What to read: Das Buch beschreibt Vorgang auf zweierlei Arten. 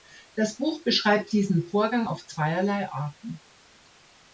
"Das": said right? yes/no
yes